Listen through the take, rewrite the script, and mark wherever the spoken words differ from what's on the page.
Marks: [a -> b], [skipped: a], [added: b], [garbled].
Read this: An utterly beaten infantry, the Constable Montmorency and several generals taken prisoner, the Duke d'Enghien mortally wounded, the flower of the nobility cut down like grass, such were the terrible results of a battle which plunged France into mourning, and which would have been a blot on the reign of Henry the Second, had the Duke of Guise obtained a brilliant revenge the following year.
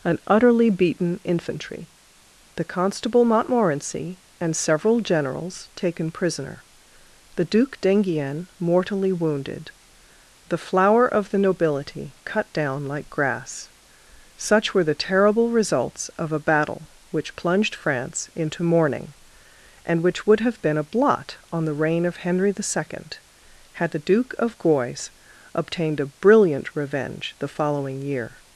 An utterly beaten infantry, the Constable Montmorency and several generals taken prisoner, the Duke d'Enghien mortally wounded, the flower of the nobility cut down like grass, such were the terrible results of a battle which plunged France into mourning, and which would have been a blot on the reign of Henry the Second, had the Duke of Guise obtained a brilliant revenge the following year.